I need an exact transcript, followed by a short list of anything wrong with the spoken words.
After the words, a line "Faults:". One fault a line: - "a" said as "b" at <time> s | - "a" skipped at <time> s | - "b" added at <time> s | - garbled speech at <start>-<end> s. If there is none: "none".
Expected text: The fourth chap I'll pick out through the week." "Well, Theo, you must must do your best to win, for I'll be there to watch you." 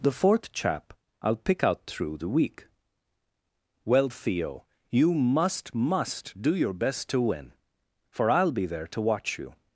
The fourth chap I'll pick out through the week." "Well, Theo, you must must do your best to win, for I'll be there to watch you."
Faults:
none